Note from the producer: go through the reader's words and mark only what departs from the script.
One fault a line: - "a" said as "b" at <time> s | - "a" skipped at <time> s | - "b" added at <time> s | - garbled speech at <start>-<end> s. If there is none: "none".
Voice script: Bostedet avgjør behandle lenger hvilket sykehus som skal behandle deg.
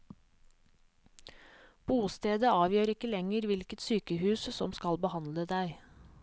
- "behandle" said as "ikke" at 3.0 s